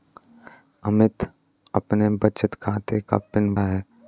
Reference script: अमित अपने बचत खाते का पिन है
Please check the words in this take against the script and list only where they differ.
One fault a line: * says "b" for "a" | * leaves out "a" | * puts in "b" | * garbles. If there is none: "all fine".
all fine